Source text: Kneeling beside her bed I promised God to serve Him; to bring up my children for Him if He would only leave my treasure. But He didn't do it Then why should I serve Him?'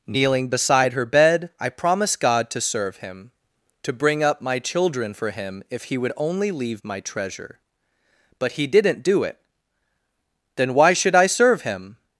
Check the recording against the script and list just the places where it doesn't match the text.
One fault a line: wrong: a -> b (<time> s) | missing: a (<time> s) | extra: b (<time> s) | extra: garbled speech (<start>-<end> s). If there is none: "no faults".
no faults